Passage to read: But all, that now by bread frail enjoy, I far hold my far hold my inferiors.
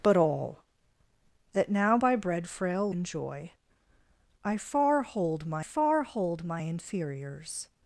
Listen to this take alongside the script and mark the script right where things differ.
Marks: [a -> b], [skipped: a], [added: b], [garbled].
But all, that now by bread frail enjoy, I far hold my far hold my inferiors.